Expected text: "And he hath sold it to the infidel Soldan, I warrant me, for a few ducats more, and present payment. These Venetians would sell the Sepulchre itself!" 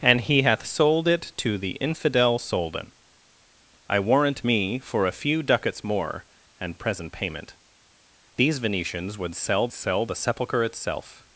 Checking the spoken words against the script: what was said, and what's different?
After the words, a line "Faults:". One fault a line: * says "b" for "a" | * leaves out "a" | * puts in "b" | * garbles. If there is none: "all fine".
"And he hath sold it to the infidel Soldan, I warrant me, for a few ducats more, and present payment. These Venetians would sell sell the Sepulchre itself!"
Faults:
* puts in "sell"